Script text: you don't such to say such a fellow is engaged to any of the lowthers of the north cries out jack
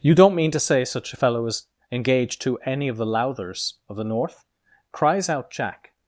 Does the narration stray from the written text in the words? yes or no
yes